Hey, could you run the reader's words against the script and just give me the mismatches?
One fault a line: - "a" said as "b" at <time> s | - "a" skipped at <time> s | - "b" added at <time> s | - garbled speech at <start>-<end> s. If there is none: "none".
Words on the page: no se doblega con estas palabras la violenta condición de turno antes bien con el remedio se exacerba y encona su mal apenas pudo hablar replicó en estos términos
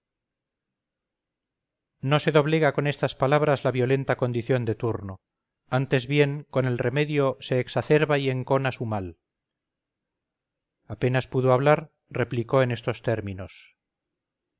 none